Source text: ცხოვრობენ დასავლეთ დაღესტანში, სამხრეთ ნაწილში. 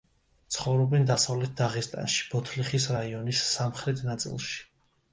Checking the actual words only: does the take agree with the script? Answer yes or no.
no